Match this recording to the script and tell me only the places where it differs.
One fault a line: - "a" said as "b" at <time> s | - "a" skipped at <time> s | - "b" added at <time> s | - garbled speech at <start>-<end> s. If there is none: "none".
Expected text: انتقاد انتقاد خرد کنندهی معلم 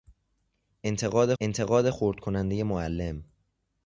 none